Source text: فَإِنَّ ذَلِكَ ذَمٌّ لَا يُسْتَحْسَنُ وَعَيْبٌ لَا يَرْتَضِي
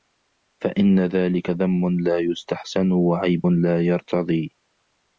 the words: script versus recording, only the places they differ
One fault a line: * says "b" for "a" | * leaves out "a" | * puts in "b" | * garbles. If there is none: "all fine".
all fine